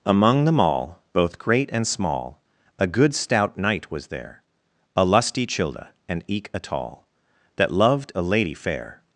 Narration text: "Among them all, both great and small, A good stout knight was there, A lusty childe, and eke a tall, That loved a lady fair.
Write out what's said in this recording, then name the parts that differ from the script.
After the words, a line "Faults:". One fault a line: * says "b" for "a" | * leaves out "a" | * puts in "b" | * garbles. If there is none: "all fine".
"Among them all, both great and small, A good stout knight was there, A lusty childe, and eke a tall, That loved a lady fair.
Faults:
all fine